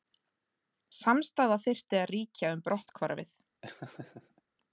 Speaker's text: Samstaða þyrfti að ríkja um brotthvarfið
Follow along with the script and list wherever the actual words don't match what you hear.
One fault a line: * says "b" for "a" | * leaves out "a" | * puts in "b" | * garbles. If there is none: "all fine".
all fine